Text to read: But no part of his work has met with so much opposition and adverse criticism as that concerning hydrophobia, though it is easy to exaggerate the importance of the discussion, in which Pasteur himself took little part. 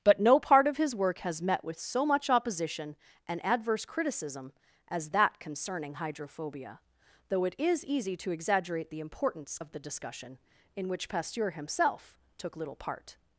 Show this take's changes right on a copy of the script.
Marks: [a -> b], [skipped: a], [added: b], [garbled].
But no part of his work has met with so much opposition and adverse criticism as that concerning hydrophobia, though it is easy to exaggerate the importance of the discussion, in which Pasteur himself took little part.